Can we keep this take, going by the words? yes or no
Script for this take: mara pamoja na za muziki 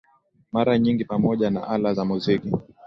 no